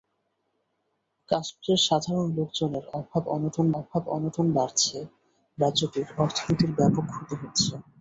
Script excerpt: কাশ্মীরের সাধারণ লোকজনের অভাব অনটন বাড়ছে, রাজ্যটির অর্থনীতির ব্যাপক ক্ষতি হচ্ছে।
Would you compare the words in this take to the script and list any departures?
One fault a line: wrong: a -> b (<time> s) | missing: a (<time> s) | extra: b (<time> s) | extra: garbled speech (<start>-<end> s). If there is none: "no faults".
extra: অভাব অনটন (3.8 s)